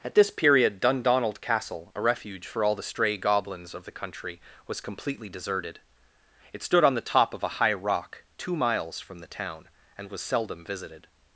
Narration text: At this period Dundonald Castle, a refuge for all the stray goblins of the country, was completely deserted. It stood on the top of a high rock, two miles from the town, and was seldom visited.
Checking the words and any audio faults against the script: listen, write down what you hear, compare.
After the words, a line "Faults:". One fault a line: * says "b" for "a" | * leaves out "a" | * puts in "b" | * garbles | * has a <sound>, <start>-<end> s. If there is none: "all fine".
At this period Dundonald Castle, a refuge for all the stray goblins of the country, was completely deserted. It stood on the top of a high rock, two miles from the town, and was seldom visited.
Faults:
all fine